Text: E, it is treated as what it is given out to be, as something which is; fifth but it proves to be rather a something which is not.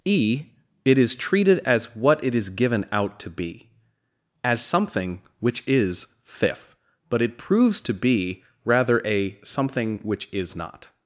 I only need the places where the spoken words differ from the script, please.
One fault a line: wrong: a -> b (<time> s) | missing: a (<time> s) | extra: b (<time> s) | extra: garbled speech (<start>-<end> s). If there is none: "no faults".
no faults